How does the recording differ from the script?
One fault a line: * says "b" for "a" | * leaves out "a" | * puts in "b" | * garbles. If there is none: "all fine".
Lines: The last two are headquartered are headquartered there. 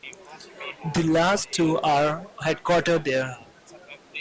* leaves out "are headquartered"